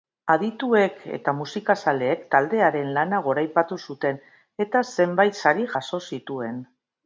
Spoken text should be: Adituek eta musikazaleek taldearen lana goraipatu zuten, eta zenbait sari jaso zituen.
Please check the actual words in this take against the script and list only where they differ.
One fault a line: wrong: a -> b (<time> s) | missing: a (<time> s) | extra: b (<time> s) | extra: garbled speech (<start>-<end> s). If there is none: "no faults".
no faults